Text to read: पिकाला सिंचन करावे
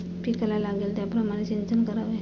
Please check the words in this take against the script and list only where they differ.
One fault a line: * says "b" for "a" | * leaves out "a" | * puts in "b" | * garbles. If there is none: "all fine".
* puts in "लागेल त्याप्रमाणे"